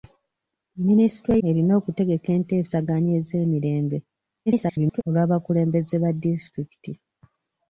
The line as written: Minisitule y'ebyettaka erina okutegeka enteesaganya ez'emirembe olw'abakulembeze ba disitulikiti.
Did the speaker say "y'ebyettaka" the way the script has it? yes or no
no